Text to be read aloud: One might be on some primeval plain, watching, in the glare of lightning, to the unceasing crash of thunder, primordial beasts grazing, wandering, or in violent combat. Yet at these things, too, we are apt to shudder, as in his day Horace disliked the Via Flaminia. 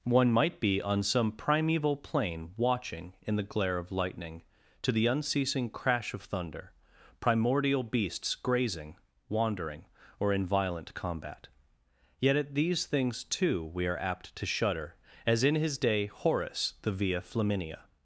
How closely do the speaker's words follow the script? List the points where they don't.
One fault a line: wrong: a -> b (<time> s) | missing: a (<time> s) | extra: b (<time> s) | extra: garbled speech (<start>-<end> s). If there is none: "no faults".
missing: disliked (16.8 s)